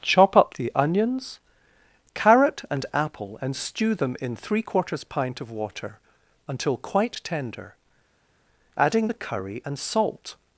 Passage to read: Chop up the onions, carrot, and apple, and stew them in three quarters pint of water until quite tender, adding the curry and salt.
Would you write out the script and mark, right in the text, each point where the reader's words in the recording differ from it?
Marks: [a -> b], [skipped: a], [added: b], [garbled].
Chop up the onions, carrot, and apple, and stew them in three quarters pint of water until quite tender, adding the curry and salt.